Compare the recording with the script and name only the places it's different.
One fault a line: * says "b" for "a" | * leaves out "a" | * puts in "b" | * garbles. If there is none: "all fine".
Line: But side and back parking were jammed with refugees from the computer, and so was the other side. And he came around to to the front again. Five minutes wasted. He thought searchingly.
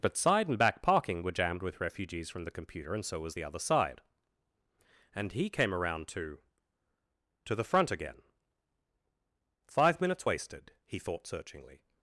all fine